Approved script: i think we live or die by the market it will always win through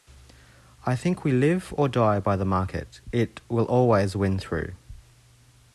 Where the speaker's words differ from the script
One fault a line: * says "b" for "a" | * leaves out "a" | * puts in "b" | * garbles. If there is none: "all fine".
all fine